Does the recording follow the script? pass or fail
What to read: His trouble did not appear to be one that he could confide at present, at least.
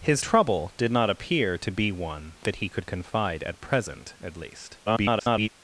fail